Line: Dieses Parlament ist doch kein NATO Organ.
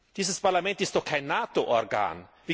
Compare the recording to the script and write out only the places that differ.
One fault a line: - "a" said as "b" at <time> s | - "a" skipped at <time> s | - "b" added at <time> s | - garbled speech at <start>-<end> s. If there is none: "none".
none